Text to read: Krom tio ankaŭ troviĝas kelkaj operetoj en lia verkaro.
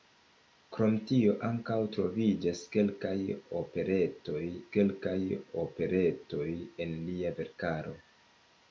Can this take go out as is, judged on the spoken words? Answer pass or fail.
fail